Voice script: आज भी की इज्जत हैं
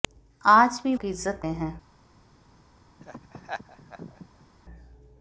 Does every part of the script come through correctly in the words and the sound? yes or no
no